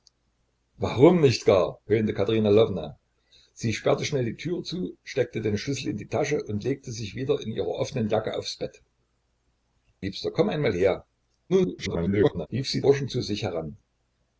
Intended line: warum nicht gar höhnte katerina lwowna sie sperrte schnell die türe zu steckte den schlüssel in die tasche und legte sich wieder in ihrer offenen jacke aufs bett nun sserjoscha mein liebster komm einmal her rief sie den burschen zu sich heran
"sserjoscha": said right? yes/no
no